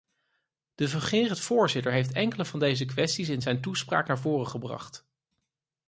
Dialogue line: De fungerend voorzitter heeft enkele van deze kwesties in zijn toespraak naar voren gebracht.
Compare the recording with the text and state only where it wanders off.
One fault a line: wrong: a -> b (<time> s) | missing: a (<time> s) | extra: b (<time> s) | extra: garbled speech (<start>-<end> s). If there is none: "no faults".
no faults